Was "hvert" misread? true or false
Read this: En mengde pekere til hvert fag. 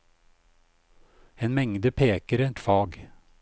true